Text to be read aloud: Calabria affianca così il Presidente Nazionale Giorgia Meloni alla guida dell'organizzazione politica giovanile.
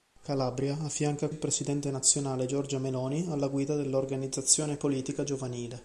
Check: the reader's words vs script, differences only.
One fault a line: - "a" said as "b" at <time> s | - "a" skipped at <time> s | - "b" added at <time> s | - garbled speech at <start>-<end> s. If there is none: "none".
- "così" skipped at 1.3 s